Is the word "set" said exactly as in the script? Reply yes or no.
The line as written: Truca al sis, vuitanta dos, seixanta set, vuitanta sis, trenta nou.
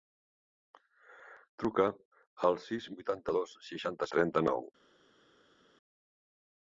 no